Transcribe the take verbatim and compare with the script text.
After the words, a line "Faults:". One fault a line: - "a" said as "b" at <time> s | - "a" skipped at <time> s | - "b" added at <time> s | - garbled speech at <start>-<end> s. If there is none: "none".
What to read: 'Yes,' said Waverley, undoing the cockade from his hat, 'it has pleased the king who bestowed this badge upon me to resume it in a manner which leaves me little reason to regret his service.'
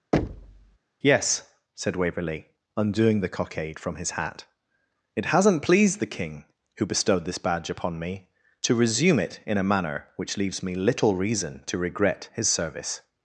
'Yes,' said Waverley, undoing the cockade from his hat, 'it hasn't pleased the king who bestowed this badge upon me to resume it in a manner which leaves me little reason to regret his service.'
Faults:
- "has" said as "hasn't" at 5.3 s